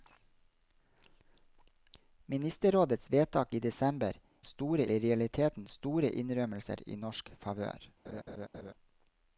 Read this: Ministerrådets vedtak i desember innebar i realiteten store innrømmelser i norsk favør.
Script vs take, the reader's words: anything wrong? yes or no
yes